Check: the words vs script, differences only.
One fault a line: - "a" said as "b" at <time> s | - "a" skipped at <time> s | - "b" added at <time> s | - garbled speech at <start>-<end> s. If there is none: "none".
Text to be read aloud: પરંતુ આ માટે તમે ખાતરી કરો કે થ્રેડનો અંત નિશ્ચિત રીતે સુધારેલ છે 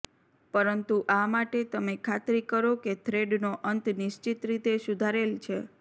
none